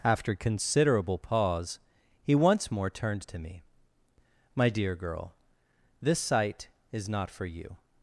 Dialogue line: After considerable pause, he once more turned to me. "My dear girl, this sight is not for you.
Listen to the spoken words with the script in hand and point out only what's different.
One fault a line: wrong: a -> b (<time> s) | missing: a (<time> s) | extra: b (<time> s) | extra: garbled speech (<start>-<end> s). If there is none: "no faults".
no faults